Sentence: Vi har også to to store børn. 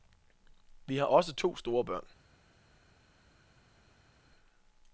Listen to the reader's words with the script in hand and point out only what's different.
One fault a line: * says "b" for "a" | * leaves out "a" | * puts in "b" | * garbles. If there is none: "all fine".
* leaves out "to"